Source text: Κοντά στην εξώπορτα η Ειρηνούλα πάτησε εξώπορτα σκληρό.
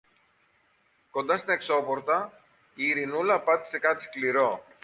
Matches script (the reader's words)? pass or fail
fail